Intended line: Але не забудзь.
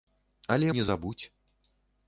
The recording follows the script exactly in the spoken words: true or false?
true